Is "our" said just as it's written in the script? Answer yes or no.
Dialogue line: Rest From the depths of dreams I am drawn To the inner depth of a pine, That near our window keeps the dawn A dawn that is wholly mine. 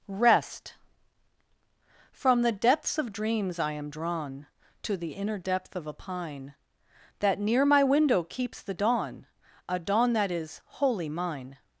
no